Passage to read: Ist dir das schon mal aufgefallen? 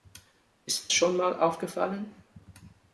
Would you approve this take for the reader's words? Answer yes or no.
no